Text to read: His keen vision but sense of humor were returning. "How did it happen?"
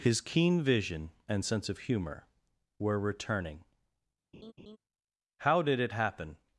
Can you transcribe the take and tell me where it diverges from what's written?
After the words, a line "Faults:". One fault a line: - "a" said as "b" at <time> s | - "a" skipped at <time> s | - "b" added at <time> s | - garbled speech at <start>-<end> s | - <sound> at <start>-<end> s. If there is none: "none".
His keen vision and sense of humor were returning. "How did it happen?"
Faults:
- "but" said as "and" at 1.3 s
- laugh at 4.3-4.8 s